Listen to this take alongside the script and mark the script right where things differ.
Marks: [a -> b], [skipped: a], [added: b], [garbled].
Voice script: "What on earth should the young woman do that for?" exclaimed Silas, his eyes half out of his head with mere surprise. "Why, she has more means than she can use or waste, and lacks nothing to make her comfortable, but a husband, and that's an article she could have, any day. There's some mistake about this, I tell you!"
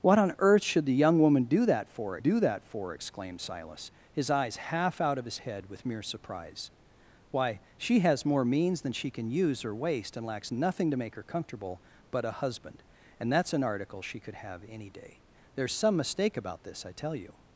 "What on earth should the young woman do that for?" [added: do that for] exclaimed Silas, his eyes half out of his head with mere surprise. "Why, she has more means than she can use or waste, and lacks nothing to make her comfortable, but a husband, and that's an article she could have, any day. There's some mistake about this, I tell you!"